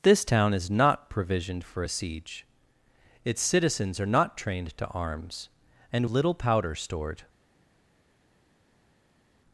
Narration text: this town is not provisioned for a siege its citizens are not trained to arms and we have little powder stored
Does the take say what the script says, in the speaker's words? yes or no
no